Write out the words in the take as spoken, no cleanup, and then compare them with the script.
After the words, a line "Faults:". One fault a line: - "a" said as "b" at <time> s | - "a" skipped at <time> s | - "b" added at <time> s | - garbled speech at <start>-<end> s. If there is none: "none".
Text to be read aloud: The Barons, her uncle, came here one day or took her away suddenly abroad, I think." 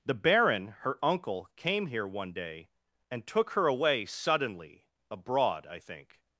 The Baron, her uncle, came here one day and took her away suddenly abroad, I think."
Faults:
- "Barons" said as "Baron" at 0.1 s
- "or" said as "and" at 3.1 s